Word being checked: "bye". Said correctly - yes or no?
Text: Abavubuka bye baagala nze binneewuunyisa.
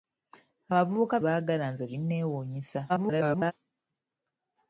no